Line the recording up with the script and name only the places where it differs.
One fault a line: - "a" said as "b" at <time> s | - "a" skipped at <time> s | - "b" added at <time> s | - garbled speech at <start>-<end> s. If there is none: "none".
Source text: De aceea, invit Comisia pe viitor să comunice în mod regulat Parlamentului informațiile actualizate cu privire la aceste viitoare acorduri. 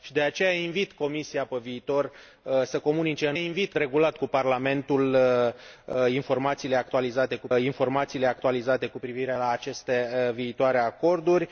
- "mod" said as "invit" at 3.3 s
- "informațiile actualizate cu" added at 7.6 s